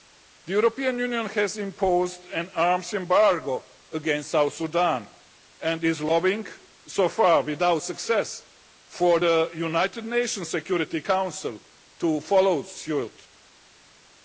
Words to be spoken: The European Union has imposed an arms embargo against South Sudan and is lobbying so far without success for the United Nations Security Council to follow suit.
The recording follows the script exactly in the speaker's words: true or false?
true